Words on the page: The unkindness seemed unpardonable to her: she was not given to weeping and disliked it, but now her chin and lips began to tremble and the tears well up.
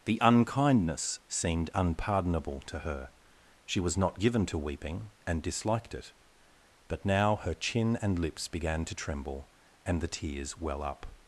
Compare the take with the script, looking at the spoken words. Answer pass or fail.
pass